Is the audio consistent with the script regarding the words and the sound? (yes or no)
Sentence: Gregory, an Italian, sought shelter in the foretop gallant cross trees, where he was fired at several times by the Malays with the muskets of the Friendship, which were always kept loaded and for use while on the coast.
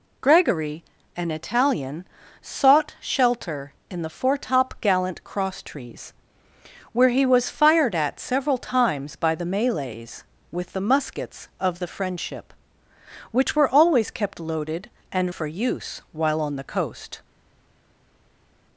yes